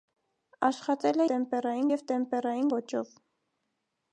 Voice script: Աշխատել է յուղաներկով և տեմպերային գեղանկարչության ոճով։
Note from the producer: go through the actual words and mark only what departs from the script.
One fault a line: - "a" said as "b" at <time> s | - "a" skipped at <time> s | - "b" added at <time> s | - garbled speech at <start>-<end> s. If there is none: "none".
- "յուղաներկով" said as "տեմպերային" at 1.3 s
- "գեղանկարչության" skipped at 2.7 s